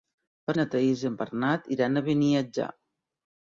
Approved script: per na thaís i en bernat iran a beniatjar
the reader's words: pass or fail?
pass